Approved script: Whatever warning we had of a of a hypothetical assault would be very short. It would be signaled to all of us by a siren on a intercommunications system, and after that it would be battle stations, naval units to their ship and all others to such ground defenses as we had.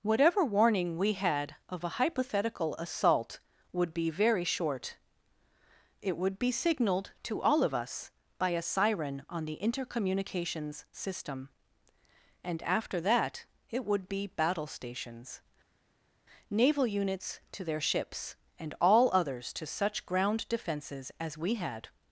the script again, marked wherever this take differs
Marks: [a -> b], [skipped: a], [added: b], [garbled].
Whatever warning we had of a [skipped: of a] hypothetical assault would be very short. It would be signaled to all of us by a siren on [a -> the] intercommunications system, and after that it would be battle stations, naval units to their [ship -> ships] and all others to such ground defenses as we had.